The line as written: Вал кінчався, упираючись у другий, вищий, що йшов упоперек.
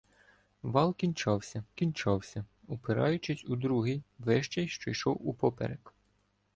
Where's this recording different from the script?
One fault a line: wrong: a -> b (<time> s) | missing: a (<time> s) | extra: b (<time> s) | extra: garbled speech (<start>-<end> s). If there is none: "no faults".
extra: кінчався (1.7 s)